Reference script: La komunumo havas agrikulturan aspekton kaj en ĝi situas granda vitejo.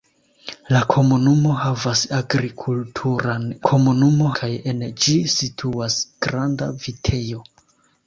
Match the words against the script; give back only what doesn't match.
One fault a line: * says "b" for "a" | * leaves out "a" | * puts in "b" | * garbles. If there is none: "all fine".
* says "komunumo" for "aspekton"